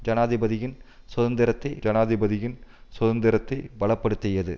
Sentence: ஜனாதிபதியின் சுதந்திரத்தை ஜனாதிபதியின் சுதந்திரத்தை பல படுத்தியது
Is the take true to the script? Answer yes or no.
yes